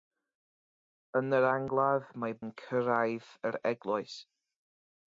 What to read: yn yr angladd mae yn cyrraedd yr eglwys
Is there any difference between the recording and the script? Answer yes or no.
no